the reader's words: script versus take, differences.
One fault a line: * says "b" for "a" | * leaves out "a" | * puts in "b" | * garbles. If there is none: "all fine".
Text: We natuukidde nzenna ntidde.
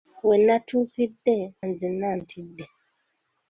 all fine